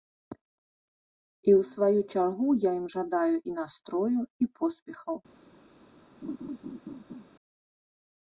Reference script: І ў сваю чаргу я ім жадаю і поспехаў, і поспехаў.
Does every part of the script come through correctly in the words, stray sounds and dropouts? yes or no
no